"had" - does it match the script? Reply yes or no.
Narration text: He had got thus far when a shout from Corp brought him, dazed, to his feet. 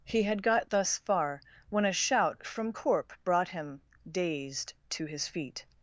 yes